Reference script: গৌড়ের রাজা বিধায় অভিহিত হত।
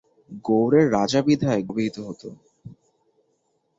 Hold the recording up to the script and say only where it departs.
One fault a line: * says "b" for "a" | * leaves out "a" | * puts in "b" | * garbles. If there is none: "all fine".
all fine